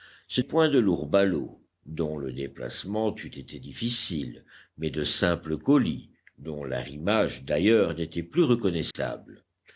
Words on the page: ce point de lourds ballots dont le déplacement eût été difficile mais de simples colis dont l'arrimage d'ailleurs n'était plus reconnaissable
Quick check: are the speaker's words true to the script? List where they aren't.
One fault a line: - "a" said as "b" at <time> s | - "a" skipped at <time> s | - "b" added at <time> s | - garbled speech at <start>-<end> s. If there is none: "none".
none